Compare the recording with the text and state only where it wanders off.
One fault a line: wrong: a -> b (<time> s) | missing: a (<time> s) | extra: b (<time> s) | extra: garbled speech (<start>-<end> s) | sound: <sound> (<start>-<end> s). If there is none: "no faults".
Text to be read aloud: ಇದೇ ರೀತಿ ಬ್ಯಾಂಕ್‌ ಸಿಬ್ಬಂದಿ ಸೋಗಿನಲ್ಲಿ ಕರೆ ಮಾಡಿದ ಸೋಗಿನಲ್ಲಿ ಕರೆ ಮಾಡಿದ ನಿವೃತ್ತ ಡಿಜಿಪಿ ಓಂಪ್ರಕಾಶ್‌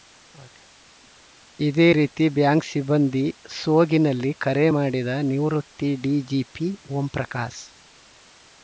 missing: ಸೋಗಿನಲ್ಲಿ ಕರೆ ಮಾಡಿದ (5.1 s)